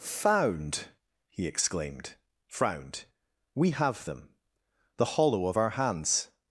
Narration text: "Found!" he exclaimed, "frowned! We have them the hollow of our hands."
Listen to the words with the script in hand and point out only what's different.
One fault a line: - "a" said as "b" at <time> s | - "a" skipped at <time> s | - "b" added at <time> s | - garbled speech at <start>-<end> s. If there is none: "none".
none